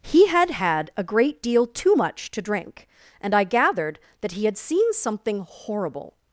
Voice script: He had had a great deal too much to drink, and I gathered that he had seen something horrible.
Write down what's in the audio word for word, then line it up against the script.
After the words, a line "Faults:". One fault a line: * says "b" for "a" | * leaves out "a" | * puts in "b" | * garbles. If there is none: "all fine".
He had had a great deal too much to drink, and I gathered that he had seen something horrible.
Faults:
all fine